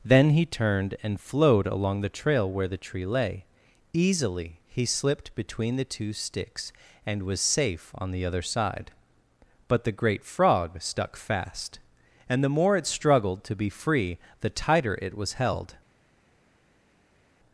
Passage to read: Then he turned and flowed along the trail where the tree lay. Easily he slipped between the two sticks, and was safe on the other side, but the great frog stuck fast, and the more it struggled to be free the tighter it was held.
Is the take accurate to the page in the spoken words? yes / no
yes